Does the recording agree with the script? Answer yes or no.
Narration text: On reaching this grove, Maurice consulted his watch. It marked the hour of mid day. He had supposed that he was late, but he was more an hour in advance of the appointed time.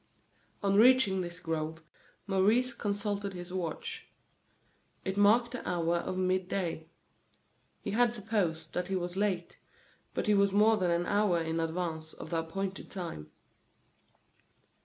no